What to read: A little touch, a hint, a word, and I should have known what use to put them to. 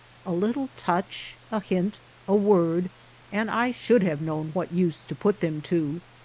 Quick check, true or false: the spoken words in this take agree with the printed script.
true